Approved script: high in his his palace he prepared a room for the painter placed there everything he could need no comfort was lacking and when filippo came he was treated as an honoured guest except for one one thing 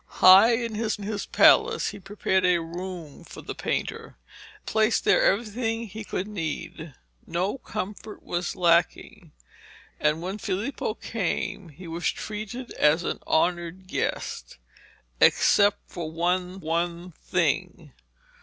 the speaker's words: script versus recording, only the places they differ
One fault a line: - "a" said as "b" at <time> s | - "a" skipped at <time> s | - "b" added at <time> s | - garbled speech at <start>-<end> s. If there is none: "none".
none